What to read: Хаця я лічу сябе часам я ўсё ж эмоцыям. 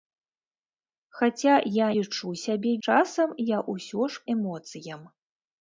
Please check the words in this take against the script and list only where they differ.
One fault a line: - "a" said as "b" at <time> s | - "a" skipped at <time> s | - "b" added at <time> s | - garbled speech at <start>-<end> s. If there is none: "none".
none